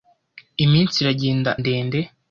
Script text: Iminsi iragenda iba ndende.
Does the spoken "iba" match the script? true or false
false